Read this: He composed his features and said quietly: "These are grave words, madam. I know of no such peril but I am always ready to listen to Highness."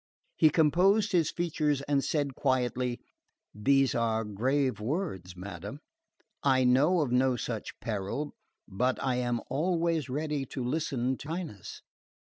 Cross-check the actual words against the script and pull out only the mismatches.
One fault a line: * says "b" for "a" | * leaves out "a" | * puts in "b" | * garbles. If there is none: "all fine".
all fine